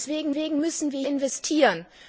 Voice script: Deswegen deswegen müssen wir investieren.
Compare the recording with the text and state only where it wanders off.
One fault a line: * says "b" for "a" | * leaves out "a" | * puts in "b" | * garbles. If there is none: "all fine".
all fine